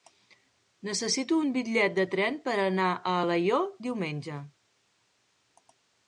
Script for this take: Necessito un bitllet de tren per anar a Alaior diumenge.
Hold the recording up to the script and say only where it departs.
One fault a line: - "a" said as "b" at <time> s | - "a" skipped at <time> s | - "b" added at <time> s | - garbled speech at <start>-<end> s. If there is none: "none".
none